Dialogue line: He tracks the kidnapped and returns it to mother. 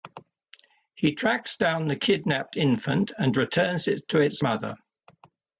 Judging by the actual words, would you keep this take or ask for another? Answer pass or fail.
fail